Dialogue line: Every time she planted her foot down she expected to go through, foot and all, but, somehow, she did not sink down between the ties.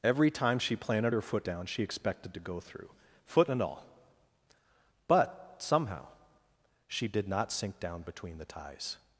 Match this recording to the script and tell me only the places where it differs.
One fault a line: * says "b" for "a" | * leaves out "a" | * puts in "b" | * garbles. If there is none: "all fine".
all fine